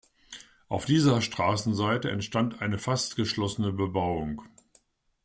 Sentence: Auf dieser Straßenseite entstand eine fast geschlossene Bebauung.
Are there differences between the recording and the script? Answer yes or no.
no